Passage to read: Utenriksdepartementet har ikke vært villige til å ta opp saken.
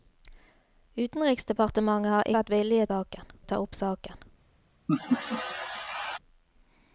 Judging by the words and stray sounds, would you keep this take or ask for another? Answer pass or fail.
fail